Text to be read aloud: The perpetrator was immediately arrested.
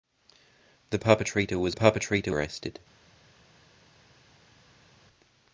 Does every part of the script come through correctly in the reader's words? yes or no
no